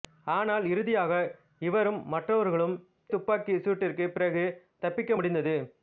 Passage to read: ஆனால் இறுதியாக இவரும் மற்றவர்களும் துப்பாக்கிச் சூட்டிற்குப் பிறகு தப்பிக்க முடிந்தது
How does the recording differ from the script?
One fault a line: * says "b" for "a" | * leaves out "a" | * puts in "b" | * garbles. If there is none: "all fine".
all fine